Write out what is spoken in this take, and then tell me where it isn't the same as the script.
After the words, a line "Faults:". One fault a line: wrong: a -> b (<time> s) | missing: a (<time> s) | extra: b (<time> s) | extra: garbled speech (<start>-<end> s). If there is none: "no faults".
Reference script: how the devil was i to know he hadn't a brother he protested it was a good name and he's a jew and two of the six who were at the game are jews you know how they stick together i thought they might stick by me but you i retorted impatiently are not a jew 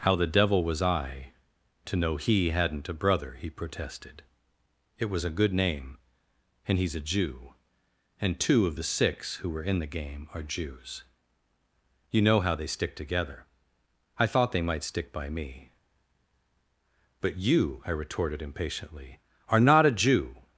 how the devil was i to know he hadn't a brother he protested it was a good name and he's a jew and two of the six who were in the game are jews you know how they stick together i thought they might stick by me but you i retorted impatiently are not a jew
Faults:
wrong: at -> in (9.6 s)